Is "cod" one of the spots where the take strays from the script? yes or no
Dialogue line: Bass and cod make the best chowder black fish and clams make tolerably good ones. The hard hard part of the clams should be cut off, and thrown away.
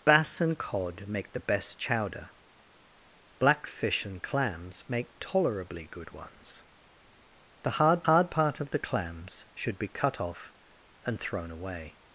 no